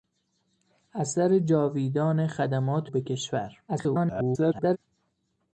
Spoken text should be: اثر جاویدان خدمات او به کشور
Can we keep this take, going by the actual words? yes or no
no